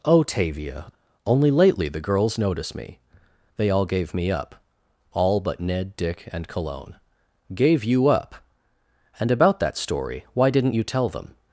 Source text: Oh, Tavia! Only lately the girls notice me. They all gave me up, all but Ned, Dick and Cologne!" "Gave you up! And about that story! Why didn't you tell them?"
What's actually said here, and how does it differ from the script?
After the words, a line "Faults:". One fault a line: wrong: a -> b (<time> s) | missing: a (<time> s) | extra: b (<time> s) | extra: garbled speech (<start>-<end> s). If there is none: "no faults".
Oh, Tavia! Only lately the girls notice me. They all gave me up, all but Ned, Dick and Cologne!" "Gave you up! And about that story! Why didn't you tell them?"
Faults:
no faults